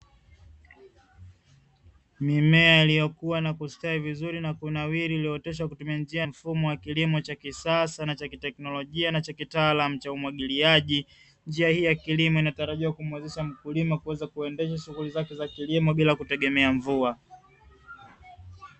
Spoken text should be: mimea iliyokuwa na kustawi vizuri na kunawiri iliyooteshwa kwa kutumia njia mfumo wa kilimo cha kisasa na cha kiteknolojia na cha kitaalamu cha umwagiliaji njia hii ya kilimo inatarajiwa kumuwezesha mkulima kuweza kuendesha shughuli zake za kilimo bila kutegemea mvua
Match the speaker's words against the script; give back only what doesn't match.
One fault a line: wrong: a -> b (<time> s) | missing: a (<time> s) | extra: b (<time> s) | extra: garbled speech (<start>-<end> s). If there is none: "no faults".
no faults